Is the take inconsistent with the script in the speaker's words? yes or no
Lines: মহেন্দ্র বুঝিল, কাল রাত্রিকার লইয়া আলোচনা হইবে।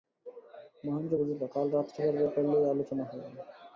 yes